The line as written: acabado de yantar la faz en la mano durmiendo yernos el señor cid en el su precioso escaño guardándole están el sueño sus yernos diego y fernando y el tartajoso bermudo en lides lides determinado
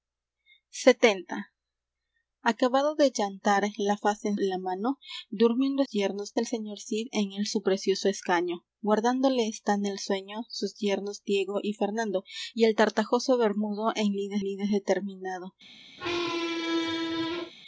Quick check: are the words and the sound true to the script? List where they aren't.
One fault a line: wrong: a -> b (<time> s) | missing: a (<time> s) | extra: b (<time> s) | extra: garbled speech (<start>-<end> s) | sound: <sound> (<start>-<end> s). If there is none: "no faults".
sound: squeak (16.0-17.5 s)